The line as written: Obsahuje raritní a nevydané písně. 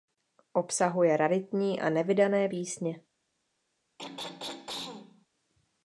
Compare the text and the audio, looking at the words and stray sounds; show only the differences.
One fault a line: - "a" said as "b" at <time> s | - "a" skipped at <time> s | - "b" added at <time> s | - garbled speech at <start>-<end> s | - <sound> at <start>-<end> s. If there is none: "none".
- throat clearing at 4.0-5.3 s